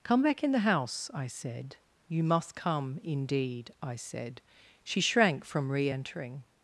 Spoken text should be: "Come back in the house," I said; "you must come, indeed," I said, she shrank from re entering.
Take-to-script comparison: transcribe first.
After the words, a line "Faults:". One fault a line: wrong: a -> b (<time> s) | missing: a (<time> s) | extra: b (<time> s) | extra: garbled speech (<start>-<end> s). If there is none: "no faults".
"Come back in the house," I said; "you must come, indeed," I said, she shrank from re entering.
Faults:
no faults